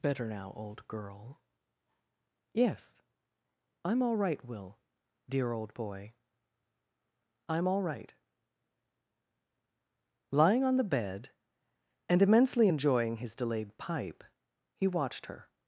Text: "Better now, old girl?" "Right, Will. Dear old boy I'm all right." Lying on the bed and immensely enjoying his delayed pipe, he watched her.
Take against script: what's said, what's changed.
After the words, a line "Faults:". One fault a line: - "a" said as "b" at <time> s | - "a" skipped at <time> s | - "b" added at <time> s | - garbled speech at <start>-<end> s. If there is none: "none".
"Better now, old girl?" "Yes. I'm all right, Will. Dear old boy I'm all right." Lying on the bed and immensely enjoying his delayed pipe, he watched her.
Faults:
- "Yes I'm all" added at 2.5 s